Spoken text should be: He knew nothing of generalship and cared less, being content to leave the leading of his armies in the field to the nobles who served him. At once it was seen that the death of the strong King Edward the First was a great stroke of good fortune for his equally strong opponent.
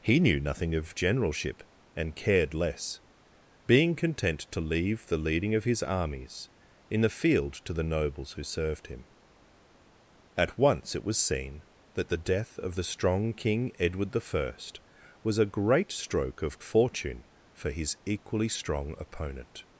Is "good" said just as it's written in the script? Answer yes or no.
no